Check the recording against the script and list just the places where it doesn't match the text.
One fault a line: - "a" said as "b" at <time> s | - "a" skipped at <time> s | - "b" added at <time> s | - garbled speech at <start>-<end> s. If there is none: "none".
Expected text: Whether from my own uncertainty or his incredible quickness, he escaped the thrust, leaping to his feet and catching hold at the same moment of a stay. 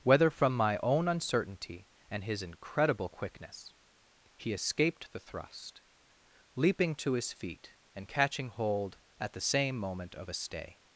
- "or" said as "and" at 2.1 s